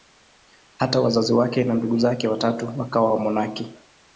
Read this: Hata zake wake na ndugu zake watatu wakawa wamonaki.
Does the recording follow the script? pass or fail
fail